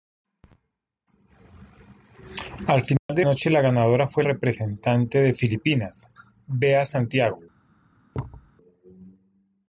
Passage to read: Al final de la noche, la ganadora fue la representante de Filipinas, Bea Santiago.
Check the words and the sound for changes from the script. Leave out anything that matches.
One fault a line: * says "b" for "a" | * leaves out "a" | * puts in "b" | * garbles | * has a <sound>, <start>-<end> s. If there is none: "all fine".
* has a dropout, 3.0-3.1 s
* leaves out "la"
* leaves out "la"
* has a thud, 8.1-8.5 s